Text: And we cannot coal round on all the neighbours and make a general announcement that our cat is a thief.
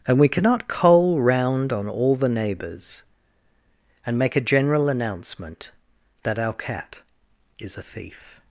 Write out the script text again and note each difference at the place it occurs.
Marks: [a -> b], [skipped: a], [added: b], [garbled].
And we cannot coal round on all the neighbours and make a general announcement that our cat is a thief.